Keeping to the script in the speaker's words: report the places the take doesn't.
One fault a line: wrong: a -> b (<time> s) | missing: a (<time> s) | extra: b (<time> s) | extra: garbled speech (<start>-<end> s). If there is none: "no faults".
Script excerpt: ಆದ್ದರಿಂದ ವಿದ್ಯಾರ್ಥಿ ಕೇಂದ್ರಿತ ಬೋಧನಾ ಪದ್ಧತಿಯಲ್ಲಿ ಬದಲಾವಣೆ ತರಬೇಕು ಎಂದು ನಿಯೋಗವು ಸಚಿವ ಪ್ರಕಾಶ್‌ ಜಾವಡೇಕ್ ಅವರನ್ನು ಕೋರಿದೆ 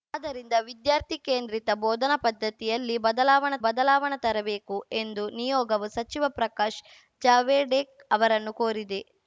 extra: ಬದಲಾವಣೆ (3.6 s)